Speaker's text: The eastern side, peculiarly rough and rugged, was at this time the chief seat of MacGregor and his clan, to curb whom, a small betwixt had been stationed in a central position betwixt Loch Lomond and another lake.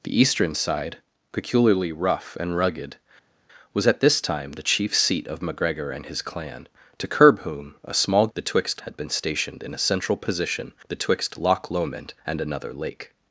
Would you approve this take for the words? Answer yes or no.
yes